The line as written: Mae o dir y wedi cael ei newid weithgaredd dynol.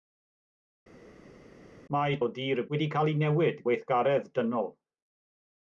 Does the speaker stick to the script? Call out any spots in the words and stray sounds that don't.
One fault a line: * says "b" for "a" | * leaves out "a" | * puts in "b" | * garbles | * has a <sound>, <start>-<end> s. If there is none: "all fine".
all fine